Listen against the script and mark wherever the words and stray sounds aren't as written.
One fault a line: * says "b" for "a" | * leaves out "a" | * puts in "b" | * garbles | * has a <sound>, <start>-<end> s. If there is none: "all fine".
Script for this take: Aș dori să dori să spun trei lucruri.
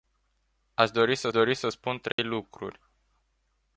* has a dropout, 2.1-2.2 s